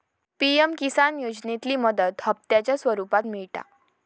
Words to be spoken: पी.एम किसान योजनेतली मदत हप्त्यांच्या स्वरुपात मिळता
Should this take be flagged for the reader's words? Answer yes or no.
no